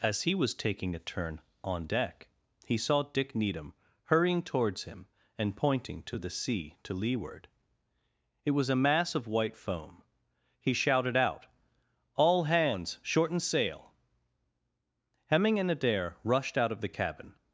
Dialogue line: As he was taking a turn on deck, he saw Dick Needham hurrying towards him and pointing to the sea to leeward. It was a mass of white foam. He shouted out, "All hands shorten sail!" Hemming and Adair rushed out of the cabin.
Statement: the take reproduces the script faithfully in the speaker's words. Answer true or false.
true